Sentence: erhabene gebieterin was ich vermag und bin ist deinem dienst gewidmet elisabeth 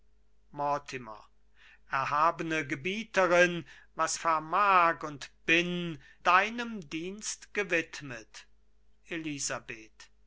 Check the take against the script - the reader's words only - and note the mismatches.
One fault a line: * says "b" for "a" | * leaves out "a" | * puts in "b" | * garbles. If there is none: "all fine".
* leaves out "ich"
* leaves out "ist"